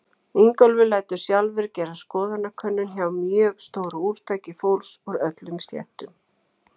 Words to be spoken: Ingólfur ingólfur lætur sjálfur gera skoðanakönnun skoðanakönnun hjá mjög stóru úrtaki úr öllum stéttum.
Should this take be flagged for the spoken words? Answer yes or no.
yes